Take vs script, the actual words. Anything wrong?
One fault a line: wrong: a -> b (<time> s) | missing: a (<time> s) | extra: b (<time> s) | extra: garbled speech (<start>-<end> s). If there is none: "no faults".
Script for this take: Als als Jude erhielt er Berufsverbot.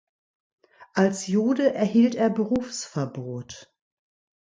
missing: als (1.3 s)